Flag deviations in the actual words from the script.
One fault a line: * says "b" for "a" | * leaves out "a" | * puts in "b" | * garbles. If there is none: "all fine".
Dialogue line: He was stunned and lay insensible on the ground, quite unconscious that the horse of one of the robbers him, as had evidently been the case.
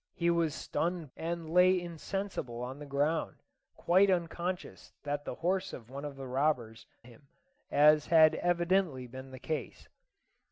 all fine